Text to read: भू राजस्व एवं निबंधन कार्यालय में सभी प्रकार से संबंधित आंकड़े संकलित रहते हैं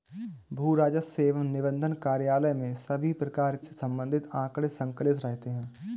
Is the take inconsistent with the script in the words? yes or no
no